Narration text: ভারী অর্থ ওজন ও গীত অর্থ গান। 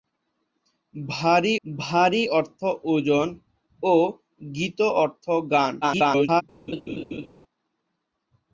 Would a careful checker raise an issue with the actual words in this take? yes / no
yes